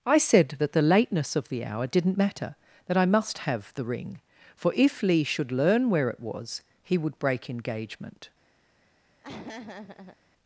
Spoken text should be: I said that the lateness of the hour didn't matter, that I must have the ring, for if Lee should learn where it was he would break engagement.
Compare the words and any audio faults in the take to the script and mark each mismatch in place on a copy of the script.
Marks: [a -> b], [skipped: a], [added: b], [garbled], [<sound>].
I said that the lateness of the hour didn't matter, that I must have the ring, for if Lee should learn where it was he would break engagement. [laugh]